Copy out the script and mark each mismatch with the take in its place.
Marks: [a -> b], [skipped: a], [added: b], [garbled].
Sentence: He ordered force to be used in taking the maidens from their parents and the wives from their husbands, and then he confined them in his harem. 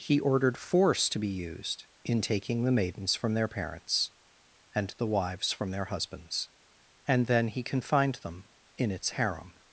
He ordered force to be used in taking the maidens from their parents and the wives from their husbands, and then he confined them in [his -> its] harem.